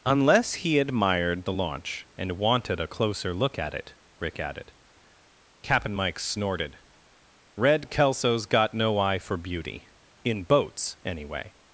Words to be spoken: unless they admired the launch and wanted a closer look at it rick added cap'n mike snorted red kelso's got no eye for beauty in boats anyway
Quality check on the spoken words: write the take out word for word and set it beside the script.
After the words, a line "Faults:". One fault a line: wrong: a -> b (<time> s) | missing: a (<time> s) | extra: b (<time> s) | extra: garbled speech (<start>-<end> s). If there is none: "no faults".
unless he admired the launch and wanted a closer look at it rick added cap'n mike snorted red kelso's got no eye for beauty in boats anyway
Faults:
wrong: they -> he (0.6 s)